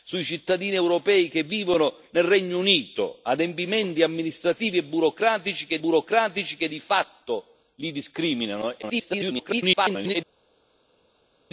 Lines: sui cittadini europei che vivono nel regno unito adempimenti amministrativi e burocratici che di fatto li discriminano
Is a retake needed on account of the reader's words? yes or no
yes